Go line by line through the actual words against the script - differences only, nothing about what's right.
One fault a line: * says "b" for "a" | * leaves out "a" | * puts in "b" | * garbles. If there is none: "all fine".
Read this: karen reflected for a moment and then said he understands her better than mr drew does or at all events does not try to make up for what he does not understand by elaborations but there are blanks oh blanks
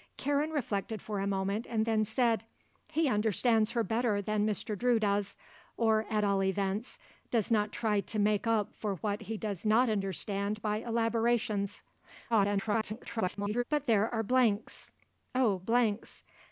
* garbles